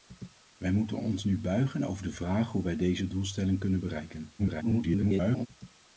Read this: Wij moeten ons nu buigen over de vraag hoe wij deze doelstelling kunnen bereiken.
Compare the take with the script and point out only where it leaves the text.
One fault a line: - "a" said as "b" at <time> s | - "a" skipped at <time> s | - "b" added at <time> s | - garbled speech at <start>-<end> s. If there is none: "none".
- garbled speech at 4.4-5.5 s